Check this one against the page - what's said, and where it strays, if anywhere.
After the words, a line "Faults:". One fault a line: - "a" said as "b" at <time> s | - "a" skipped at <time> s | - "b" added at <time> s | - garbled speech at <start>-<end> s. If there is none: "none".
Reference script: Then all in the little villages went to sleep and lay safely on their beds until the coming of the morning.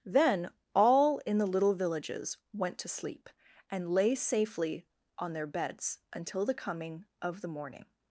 Then all in the little villages went to sleep and lay safely on their beds until the coming of the morning.
Faults:
none